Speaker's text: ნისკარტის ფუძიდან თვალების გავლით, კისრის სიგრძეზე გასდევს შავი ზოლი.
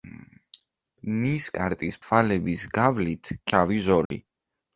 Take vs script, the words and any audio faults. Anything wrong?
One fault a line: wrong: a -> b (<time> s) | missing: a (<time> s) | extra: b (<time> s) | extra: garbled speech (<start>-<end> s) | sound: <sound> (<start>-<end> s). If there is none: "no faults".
missing: ფუძიდან (2.0 s)
missing: კისრის სიგრძეზე გასდევს (3.3 s)
sound: dropout (4.1-4.1 s)